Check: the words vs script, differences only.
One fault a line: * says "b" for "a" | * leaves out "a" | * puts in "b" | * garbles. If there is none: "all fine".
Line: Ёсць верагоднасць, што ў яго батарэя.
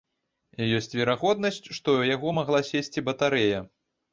* puts in "магла сесці"